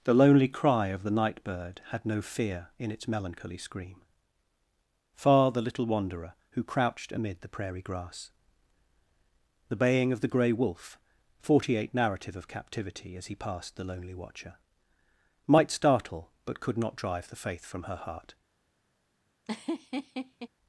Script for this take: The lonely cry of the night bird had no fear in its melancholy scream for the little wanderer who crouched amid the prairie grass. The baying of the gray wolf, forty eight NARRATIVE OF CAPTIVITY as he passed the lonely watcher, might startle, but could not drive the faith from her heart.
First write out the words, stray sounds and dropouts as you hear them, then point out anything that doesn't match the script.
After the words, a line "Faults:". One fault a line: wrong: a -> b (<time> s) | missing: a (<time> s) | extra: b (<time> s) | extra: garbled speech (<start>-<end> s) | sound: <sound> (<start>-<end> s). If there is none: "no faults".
The lonely cry of the night bird had no fear in its melancholy scream far the little wanderer who crouched amid the prairie grass. The baying of the gray wolf, forty eight NARRATIVE OF CAPTIVITY as he passed the lonely watcher, might startle, but could not drive the faith from her heart.
Faults:
wrong: for -> far (5.1 s)
sound: laugh (19.5-20.5 s)